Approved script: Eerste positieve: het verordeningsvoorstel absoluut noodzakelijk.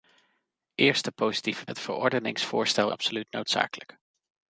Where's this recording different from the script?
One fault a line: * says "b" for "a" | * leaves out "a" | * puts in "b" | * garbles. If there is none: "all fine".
all fine